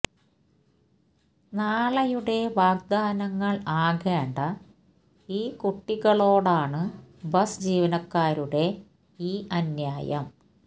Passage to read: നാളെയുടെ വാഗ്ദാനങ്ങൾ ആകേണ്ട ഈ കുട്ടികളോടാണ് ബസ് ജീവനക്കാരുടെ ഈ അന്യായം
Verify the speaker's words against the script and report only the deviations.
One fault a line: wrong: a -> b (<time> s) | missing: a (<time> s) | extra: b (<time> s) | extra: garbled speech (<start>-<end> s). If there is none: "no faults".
no faults